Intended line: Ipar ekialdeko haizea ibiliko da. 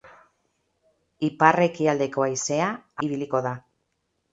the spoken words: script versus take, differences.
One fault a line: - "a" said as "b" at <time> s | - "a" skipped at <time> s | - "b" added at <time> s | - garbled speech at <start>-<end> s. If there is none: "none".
none